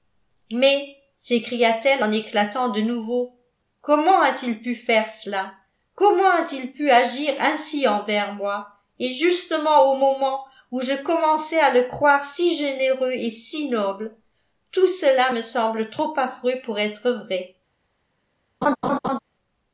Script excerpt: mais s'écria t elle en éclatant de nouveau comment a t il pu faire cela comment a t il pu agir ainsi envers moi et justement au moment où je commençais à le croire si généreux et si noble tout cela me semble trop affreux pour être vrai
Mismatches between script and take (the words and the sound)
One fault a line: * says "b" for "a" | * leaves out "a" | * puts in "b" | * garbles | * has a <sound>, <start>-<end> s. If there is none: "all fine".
* has a laugh, 18.6-19.2 s